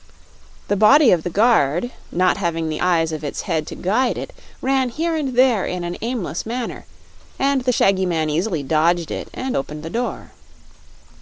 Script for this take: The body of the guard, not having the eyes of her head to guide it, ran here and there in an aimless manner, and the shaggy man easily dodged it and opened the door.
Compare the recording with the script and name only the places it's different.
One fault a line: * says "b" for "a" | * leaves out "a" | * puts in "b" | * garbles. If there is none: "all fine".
* says "its" for "her"